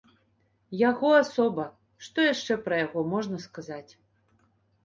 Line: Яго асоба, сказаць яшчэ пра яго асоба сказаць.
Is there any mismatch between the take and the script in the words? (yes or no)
yes